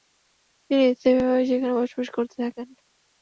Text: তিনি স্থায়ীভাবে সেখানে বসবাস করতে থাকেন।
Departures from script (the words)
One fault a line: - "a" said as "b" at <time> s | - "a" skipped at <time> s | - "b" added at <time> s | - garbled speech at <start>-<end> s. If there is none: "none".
none